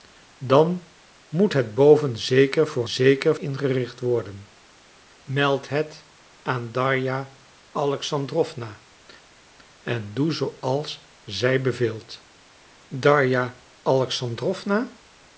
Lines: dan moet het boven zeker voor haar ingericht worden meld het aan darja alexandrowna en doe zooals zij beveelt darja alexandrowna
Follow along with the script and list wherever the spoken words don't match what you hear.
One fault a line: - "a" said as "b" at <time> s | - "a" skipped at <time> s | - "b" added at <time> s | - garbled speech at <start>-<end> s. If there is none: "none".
- "haar" said as "zeker" at 2.9 s